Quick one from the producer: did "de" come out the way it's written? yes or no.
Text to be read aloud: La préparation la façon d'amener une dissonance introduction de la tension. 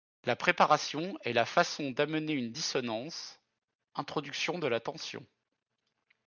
yes